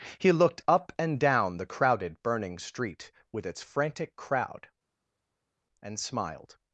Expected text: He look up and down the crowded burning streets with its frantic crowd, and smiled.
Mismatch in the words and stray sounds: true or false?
true